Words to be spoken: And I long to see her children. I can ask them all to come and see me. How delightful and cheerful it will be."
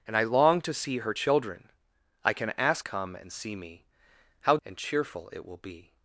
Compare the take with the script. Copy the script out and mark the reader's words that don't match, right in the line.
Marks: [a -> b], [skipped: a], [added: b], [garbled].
And I long to see her children. I can ask [skipped: them all to] come and see me. How [skipped: delightful] and cheerful it will be."